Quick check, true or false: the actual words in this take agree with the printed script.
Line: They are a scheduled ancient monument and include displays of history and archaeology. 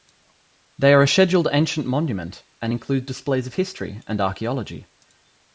true